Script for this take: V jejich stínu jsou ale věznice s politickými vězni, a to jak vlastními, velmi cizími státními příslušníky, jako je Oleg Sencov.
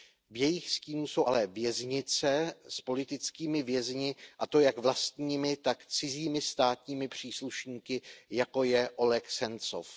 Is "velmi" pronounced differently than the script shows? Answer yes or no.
yes